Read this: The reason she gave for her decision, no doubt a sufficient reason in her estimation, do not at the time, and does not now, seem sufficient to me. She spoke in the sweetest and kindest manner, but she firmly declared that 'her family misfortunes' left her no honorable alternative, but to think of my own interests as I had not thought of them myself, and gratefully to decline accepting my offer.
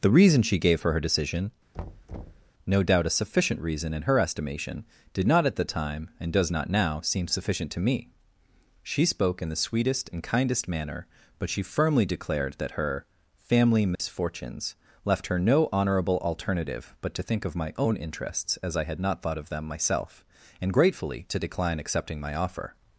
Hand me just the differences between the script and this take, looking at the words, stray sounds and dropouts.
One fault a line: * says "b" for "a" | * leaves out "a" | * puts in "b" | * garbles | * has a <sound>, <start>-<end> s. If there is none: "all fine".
* has a thud, 1.7-2.5 s
* says "did" for "do"
* has a dropout, 14.0-14.0 s